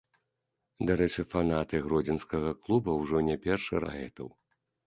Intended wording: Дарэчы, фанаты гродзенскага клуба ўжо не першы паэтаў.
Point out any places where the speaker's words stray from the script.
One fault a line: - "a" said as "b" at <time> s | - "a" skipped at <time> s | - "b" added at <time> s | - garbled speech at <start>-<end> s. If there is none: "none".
none